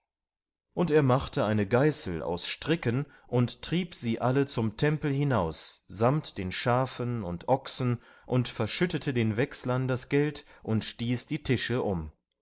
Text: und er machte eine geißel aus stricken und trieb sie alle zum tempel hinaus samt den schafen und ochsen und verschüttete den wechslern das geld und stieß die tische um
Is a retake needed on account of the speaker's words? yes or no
no